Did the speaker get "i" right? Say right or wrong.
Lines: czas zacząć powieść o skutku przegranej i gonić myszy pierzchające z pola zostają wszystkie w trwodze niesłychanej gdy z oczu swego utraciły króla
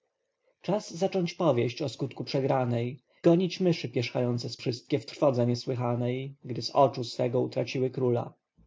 wrong